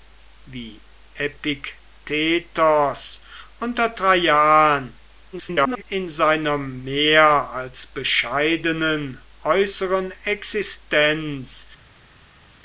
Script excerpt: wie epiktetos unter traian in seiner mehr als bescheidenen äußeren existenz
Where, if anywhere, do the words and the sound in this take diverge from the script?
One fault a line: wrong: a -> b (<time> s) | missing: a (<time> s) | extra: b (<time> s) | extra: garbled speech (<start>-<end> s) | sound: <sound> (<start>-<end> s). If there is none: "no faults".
extra: garbled speech (5.3-5.8 s)